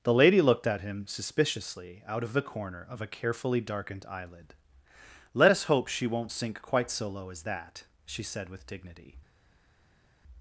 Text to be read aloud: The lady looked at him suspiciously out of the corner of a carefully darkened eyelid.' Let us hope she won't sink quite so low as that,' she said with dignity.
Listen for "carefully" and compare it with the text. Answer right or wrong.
right